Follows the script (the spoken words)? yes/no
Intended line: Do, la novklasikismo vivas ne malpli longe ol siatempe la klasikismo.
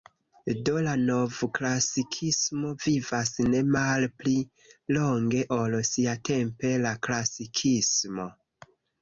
yes